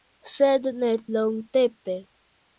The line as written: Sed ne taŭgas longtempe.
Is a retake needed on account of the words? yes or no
yes